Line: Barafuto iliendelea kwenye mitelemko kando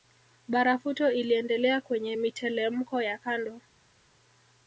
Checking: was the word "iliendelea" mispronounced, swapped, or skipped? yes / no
no